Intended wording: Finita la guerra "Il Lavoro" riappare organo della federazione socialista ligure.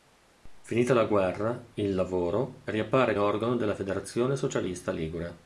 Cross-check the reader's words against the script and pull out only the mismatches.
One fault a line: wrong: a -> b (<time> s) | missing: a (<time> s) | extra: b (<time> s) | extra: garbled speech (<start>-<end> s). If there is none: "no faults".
no faults